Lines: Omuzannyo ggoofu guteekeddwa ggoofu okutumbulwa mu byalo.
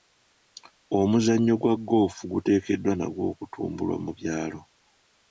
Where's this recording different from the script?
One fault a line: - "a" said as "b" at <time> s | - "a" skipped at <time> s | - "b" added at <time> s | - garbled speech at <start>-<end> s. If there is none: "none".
- "gwa" added at 1.6 s
- "ggoofu" said as "nagwo" at 3.0 s